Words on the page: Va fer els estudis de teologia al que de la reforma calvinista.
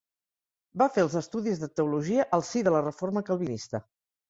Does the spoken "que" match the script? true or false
false